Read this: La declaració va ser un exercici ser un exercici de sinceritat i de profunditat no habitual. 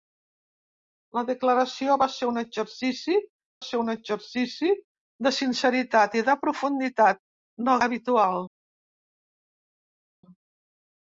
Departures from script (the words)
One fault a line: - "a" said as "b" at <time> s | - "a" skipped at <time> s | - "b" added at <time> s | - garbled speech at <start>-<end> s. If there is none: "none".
none